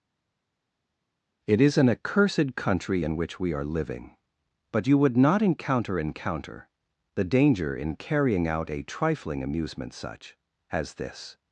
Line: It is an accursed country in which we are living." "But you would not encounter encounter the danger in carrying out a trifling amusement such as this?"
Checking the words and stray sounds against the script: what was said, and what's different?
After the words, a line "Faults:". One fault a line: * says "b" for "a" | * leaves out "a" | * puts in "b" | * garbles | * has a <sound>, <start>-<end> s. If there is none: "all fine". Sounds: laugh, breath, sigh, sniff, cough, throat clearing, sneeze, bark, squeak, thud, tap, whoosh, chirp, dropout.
It is an accursed country in which we are living." "But you would not encounter encounter the danger in carrying out a trifling amusement such as this?"
Faults:
all fine